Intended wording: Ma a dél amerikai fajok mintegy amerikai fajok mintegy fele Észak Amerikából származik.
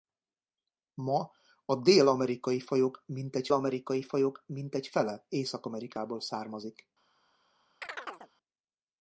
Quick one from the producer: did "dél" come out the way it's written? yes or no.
yes